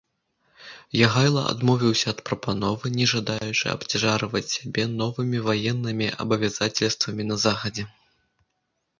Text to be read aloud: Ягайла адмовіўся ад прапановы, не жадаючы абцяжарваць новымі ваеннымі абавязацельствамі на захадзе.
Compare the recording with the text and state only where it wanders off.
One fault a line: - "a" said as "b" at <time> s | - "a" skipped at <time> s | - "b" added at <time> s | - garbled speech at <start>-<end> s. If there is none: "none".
- "сябе" added at 4.5 s